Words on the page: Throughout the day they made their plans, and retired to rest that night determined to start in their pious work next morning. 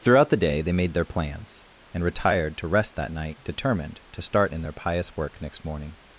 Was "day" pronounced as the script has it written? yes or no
yes